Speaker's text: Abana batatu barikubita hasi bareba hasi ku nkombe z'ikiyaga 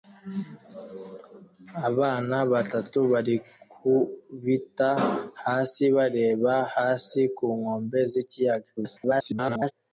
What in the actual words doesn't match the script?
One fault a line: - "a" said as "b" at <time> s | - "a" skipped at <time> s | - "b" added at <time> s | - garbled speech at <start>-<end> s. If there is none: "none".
- garbled speech at 8.8-9.7 s